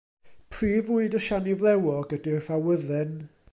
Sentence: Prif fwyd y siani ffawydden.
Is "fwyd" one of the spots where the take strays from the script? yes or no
no